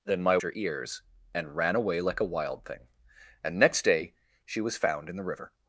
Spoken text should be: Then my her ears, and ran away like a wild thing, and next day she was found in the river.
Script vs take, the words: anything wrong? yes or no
no